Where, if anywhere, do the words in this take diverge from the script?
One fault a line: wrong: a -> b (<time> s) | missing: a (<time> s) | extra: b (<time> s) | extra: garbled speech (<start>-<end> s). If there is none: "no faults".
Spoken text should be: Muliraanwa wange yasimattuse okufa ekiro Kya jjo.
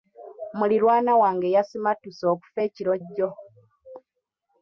missing: Kya (2.9 s)